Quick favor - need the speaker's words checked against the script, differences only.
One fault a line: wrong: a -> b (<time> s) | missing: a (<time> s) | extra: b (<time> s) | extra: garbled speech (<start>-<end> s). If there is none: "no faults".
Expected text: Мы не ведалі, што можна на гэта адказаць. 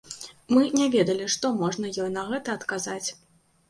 extra: ёй (2.0 s)